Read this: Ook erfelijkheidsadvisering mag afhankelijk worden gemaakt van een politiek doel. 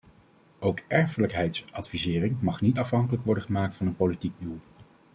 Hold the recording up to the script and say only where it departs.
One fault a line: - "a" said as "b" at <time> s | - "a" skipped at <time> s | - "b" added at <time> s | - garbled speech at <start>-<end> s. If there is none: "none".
- "niet" added at 2.6 s